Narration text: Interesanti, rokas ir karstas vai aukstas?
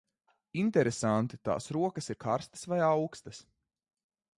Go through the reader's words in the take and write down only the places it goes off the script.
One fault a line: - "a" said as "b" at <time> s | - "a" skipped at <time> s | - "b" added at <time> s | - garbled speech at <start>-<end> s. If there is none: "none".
- "tās" added at 1.5 s